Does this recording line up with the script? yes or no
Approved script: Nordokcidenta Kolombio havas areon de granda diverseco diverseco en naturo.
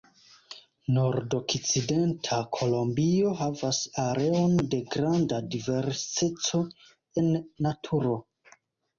no